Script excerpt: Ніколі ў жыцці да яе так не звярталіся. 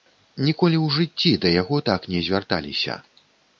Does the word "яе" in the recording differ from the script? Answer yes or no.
yes